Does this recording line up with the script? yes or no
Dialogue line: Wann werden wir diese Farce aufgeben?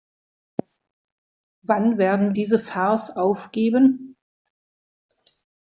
no